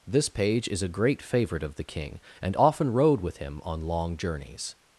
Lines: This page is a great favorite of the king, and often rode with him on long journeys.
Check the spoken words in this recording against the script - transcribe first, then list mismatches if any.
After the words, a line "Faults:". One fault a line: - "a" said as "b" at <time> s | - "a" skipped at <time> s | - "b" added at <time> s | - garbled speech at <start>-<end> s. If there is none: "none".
This page is a great favorite of the king, and often rode with him on long journeys.
Faults:
none